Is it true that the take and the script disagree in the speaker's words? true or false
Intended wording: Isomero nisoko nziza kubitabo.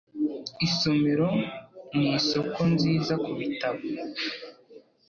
false